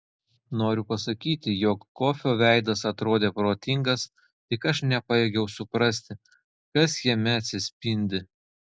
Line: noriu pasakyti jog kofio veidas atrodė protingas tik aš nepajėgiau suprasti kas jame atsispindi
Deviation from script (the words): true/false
false